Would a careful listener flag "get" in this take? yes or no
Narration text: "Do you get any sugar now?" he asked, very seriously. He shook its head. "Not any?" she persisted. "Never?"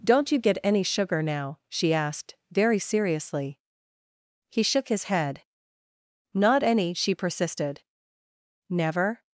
no